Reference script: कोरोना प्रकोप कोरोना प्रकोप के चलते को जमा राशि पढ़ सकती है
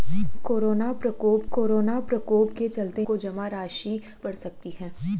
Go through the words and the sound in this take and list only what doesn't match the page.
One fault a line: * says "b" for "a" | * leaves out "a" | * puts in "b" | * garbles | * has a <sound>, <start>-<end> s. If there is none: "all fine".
all fine